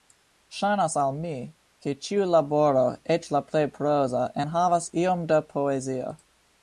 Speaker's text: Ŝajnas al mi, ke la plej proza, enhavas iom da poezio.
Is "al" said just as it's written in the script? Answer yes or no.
yes